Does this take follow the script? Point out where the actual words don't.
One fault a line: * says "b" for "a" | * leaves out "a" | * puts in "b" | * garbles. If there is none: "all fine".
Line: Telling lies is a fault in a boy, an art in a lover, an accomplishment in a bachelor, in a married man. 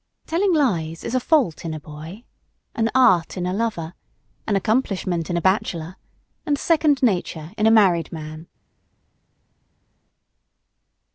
* puts in "and second nature"